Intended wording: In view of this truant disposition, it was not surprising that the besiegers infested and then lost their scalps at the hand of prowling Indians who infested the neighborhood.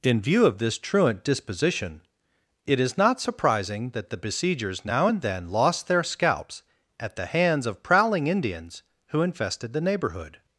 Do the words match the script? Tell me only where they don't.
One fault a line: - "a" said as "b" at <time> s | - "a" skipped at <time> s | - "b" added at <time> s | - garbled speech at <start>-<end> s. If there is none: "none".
- "was" said as "is" at 2.8 s
- "infested" said as "now" at 4.8 s
- "hand" said as "hands" at 7.3 s